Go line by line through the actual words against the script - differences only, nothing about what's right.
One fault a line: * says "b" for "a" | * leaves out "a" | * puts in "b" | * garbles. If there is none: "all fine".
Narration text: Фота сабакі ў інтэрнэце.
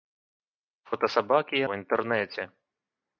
all fine